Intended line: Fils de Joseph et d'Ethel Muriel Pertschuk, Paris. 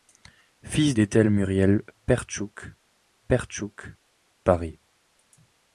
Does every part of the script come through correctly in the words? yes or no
no